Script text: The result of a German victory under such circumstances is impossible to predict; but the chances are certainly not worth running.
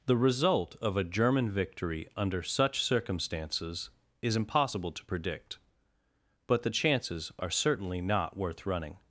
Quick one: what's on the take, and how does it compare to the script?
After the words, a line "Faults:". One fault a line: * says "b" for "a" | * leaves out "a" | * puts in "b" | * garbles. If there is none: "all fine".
The result of a German victory under such circumstances is impossible to predict; but the chances are certainly not worth running.
Faults:
all fine